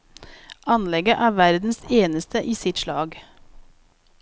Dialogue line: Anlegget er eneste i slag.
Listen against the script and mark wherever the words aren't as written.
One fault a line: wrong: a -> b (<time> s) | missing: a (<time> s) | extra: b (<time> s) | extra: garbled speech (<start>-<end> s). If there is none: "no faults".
extra: verdens (1.4 s)
extra: sitt (2.5 s)